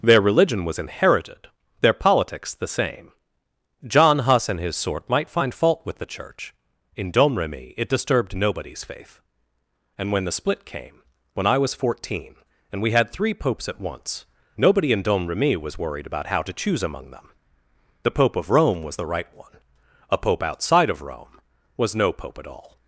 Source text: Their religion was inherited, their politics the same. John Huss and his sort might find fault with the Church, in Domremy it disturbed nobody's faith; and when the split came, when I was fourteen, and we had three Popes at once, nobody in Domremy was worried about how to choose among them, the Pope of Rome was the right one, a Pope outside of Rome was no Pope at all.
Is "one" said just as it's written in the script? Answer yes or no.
yes